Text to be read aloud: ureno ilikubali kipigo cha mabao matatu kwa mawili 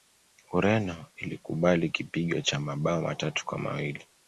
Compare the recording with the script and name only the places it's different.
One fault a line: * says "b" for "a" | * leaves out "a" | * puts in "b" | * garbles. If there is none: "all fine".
all fine